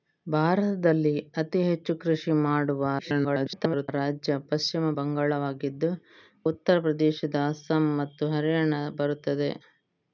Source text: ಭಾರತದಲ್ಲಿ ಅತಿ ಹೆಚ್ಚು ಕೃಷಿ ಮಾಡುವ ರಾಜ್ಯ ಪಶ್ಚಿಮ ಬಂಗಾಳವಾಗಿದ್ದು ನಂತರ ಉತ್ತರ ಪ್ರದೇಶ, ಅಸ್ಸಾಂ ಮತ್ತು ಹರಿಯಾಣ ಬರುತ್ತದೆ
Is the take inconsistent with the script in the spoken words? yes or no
yes